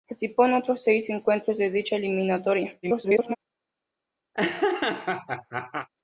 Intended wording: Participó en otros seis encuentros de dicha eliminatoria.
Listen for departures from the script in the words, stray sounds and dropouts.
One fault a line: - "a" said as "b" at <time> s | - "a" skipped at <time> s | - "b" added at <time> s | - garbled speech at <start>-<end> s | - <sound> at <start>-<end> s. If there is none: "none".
- garbled speech at 2.8-3.4 s
- laugh at 4.3-5.9 s